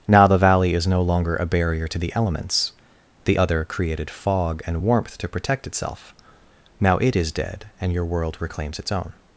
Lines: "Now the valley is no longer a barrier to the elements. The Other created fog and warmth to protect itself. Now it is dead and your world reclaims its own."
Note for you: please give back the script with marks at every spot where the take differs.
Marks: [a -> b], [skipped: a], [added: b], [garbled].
"Now the valley is no longer a barrier to the elements. The Other created fog and warmth to protect itself. Now it is dead and your world reclaims its own."